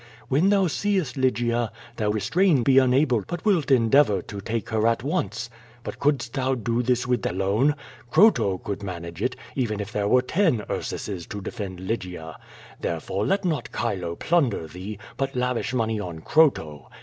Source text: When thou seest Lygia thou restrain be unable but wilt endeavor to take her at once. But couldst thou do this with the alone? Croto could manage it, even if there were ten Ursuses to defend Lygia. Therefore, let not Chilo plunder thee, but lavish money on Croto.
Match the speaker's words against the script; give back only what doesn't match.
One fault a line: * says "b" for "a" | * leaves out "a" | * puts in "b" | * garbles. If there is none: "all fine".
all fine